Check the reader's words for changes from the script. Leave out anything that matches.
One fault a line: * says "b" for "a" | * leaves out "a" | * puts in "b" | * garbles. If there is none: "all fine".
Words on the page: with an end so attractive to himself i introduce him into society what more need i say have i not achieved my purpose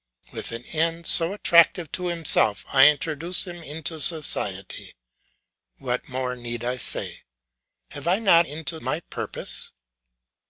* says "into" for "achieved"